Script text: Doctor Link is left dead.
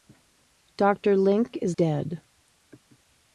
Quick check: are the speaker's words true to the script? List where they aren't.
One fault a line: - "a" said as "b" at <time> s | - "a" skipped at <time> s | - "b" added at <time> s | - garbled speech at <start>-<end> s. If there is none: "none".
- "left" skipped at 1.8 s